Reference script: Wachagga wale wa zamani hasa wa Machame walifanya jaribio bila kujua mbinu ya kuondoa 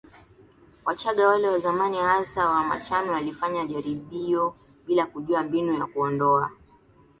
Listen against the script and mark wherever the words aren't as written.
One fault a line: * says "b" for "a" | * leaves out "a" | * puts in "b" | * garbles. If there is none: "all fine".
all fine